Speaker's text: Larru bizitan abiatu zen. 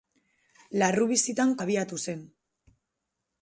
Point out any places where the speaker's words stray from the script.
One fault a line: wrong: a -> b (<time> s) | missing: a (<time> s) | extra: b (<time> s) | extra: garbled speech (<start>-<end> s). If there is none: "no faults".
no faults